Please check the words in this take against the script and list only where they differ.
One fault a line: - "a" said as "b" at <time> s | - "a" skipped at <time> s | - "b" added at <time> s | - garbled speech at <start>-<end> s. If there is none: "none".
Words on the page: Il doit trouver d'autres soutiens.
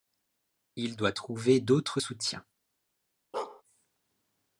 none